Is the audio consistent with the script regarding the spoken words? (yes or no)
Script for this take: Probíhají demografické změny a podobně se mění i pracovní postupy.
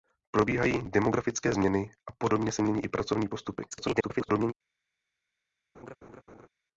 no